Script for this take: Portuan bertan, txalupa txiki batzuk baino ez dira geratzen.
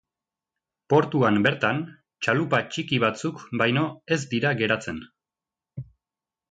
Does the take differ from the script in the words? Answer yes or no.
no